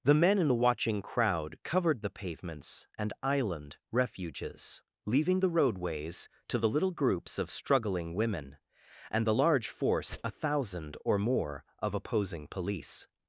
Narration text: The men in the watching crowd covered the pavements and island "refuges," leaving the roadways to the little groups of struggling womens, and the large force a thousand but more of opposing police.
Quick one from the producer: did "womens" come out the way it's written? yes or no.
no